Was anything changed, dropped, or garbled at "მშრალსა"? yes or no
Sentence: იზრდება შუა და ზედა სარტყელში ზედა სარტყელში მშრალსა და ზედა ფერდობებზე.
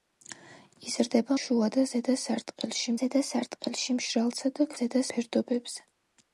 no